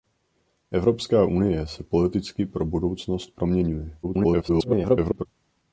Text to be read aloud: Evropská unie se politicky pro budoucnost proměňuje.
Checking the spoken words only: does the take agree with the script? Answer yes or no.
no